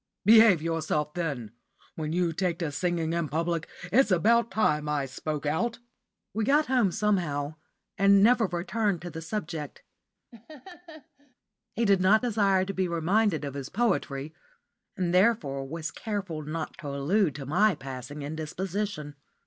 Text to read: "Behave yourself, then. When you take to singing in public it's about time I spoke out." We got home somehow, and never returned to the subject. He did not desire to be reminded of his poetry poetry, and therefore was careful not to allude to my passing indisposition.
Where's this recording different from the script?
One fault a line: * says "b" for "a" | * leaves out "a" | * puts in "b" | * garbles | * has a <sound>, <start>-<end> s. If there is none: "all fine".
* has a laugh, 10.3-11.3 s
* leaves out "poetry"